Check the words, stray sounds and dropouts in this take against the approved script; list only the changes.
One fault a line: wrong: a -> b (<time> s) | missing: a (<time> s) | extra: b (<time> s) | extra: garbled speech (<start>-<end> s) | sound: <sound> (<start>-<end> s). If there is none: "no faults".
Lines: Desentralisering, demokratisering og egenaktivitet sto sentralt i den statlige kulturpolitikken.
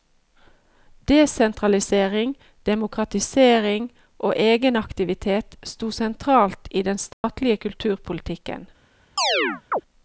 sound: dropout (7.1-7.2 s)
sound: chirp (9.2-9.8 s)